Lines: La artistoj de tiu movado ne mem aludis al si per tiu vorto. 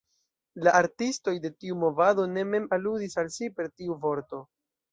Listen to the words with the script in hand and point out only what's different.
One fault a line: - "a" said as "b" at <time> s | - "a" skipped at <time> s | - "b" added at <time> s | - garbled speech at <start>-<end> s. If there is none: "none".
none